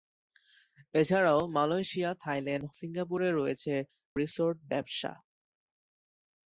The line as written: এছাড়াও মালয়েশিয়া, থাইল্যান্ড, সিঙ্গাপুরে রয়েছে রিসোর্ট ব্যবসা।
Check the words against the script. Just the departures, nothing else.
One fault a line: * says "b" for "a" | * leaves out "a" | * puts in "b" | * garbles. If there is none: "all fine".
all fine